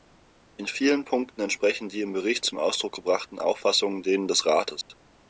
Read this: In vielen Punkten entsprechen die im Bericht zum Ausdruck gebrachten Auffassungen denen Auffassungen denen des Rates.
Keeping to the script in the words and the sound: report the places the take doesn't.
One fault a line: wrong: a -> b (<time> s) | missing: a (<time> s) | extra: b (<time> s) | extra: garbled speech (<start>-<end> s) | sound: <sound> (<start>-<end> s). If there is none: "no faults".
missing: Auffassungen denen (4.3 s)
sound: dropout (4.8-4.9 s)